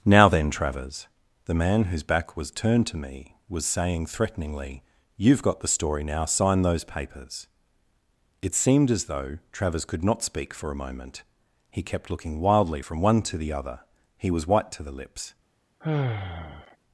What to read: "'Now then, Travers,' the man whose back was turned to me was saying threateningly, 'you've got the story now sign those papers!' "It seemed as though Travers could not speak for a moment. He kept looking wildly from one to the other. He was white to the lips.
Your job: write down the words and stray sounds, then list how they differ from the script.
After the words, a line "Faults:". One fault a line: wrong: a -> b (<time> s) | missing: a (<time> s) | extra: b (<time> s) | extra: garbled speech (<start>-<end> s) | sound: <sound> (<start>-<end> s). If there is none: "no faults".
"'Now then, Travers,' the man whose back was turned to me was saying threateningly, 'you've got the story now sign those papers!' "It seemed as though Travers could not speak for a moment. He kept looking wildly from one to the other. He was white to the lips.
Faults:
sound: sigh (15.8-16.8 s)